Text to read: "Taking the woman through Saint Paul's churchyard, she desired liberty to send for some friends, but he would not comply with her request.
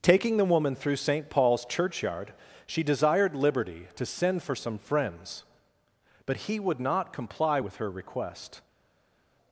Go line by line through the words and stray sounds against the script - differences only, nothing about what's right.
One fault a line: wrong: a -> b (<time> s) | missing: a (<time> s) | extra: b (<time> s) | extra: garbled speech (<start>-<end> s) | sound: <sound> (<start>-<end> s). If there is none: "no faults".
no faults